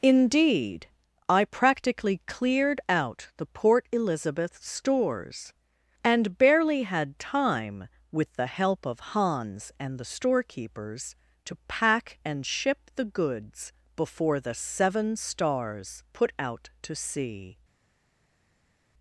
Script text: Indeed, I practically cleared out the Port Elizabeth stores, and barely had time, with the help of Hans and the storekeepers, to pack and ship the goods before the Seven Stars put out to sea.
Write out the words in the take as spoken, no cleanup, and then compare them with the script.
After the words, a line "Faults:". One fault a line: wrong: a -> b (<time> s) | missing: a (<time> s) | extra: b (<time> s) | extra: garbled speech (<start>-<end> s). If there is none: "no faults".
Indeed, I practically cleared out the Port Elizabeth stores, and barely had time, with the help of Hans and the storekeepers, to pack and ship the goods before the Seven Stars put out to sea.
Faults:
no faults